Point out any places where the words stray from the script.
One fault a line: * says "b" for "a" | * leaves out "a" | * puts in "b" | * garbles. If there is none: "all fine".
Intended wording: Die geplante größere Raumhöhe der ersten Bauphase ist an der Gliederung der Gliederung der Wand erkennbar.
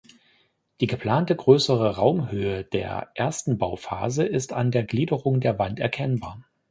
* leaves out "Gliederung der"